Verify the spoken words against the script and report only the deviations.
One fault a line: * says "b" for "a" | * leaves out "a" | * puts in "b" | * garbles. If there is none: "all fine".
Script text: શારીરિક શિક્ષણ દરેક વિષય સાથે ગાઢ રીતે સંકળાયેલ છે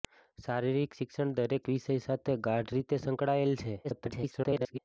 * garbles